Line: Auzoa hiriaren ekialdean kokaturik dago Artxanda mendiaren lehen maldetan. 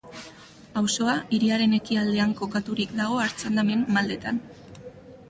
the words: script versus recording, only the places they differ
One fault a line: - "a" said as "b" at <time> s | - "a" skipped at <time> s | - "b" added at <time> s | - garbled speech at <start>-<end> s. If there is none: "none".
- "mendiaren" skipped at 3.7 s